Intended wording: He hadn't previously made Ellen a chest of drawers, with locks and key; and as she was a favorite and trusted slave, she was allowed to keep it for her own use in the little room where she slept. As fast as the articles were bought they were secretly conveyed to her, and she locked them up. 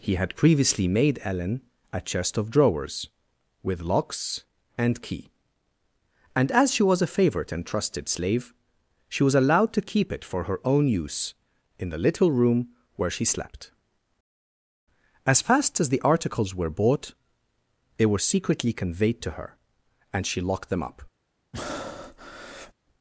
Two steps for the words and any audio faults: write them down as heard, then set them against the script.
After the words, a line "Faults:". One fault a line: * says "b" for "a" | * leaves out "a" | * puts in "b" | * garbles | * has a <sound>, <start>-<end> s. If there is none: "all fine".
He had previously made Ellen a chest of drawers, with locks and key; and as she was a favorite and trusted slave, she was allowed to keep it for her own use in the little room where she slept. As fast as the articles were bought they were secretly conveyed to her, and she locked them up.
Faults:
* says "had" for "hadn't"
* has a breath, 21.5-22.7 s